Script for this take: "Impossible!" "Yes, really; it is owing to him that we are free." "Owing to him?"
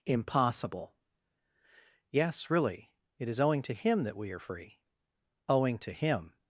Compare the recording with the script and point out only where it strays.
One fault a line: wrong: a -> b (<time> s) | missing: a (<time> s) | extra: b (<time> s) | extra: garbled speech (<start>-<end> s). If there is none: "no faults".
no faults